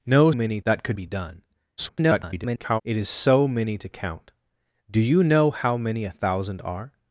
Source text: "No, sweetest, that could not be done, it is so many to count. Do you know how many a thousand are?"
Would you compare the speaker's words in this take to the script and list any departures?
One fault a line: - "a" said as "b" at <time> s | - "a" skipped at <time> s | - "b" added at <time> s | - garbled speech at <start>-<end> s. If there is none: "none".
- "sweetest" said as "many" at 0.3 s
- "not" skipped at 1.0 s
- garbled speech at 1.8-2.8 s